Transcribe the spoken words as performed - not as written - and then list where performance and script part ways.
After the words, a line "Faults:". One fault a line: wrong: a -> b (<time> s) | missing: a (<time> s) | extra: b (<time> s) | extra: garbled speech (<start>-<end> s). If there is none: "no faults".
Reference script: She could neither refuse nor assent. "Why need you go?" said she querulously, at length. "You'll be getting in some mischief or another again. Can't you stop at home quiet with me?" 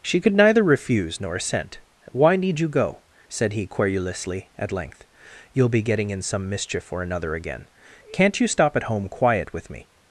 She could neither refuse nor assent. "Why need you go?" said he querulously, at length. "You'll be getting in some mischief or another again. Can't you stop at home quiet with me?"
Faults:
wrong: she -> he (3.5 s)